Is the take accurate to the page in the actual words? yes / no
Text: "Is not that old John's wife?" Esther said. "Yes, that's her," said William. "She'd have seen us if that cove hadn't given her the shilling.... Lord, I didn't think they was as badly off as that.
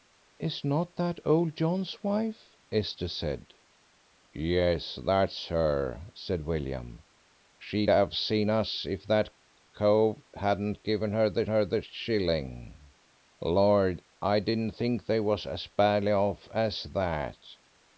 no